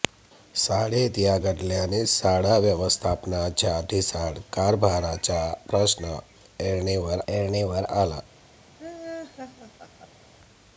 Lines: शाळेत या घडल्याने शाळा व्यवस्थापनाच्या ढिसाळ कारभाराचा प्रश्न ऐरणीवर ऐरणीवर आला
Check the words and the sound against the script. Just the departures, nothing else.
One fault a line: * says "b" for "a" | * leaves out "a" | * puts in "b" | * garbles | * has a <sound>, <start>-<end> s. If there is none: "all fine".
* has a laugh, 8.8-10.3 s